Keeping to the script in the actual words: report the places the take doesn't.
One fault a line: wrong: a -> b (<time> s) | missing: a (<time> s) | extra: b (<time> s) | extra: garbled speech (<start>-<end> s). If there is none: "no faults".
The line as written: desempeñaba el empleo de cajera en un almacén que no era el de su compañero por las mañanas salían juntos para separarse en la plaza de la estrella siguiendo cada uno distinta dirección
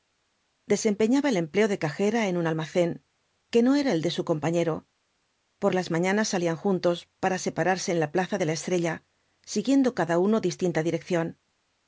no faults